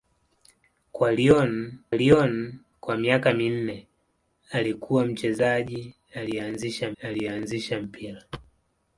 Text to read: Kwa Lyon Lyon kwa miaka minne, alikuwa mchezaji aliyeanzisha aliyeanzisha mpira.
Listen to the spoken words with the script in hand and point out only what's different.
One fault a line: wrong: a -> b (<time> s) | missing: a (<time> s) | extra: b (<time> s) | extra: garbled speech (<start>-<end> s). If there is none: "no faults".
no faults